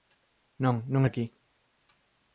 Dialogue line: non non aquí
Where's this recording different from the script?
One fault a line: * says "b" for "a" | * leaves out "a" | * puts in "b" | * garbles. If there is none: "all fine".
all fine